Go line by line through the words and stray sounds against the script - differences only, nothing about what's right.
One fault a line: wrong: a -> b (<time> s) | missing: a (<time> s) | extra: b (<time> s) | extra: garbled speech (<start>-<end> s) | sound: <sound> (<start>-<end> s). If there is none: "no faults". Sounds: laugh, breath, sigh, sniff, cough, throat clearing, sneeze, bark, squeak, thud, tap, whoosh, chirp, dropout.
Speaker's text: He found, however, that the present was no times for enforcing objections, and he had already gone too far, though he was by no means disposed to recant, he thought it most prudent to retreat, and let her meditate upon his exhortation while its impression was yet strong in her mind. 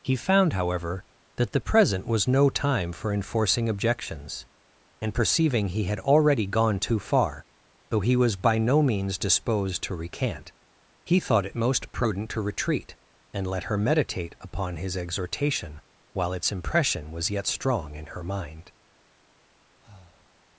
wrong: times -> time (2.5 s)
extra: perceiving (5.1 s)
sound: breath (19.8-20.3 s)